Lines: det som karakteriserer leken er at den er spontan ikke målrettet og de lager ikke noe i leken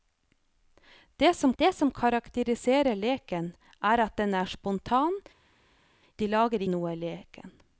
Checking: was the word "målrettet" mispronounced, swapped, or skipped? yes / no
yes